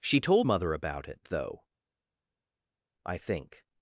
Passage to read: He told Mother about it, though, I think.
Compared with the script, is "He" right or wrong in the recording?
wrong